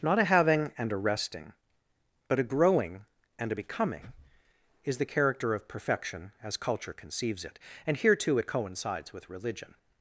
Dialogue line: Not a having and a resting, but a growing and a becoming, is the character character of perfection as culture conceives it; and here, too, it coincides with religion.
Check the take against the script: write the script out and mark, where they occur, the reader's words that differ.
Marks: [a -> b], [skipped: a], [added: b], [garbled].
Not a having and a resting, but a growing and a becoming, is the character [skipped: character] of perfection as culture conceives it; and here, too, it coincides with religion.